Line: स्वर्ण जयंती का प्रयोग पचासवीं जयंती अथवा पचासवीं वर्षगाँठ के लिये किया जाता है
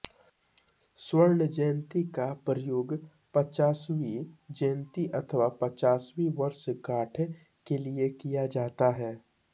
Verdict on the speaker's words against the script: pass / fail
pass